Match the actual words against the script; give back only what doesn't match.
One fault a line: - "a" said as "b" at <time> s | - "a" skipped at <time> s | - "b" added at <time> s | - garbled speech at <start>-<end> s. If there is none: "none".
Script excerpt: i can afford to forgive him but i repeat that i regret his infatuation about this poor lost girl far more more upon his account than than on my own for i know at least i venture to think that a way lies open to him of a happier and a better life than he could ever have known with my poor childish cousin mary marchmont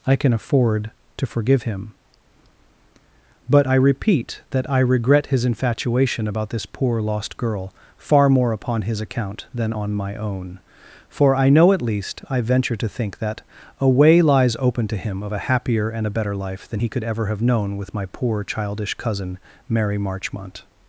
- "more" skipped at 8.5 s
- "than" skipped at 9.7 s